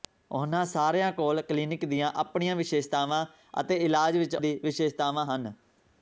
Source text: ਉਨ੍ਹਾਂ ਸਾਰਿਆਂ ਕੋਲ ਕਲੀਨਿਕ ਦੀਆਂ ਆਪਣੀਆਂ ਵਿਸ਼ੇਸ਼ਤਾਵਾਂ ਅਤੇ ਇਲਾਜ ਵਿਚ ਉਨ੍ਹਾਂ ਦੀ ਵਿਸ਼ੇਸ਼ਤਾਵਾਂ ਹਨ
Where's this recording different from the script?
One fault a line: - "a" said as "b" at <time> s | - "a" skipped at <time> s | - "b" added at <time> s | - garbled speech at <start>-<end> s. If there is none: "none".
- "ਉਨ੍ਹਾਂ" skipped at 4.3 s